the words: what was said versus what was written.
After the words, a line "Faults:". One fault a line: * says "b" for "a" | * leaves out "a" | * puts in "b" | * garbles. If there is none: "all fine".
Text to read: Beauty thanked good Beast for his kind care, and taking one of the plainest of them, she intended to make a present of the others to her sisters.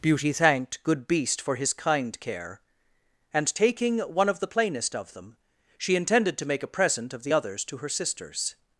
Beauty thanked good Beast for his kind care, and taking one of the plainest of them, she intended to make a present of the others to her sisters.
Faults:
all fine